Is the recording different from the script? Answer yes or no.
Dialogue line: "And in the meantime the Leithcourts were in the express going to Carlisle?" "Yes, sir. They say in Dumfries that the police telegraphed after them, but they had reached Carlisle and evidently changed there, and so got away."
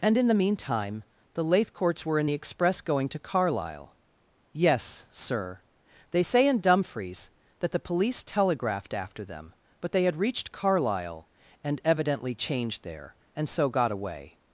no